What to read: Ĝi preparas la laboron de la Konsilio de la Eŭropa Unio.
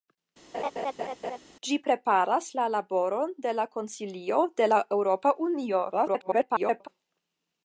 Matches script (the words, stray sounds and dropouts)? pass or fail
fail